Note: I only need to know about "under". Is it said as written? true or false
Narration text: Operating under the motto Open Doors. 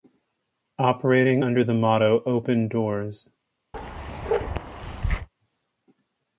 true